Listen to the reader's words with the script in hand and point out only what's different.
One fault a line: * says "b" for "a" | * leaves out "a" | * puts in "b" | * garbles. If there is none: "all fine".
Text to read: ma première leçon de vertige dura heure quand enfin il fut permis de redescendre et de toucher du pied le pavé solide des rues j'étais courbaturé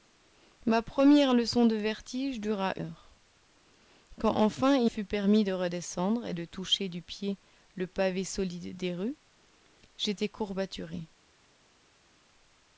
all fine